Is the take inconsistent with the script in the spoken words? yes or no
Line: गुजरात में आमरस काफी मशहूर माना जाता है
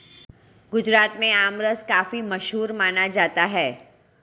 no